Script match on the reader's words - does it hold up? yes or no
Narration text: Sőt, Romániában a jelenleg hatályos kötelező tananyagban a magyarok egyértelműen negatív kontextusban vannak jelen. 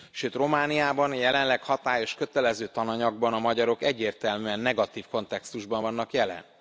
yes